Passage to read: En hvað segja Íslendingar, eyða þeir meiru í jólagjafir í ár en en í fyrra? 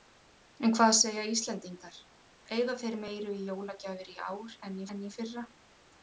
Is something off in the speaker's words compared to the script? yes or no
no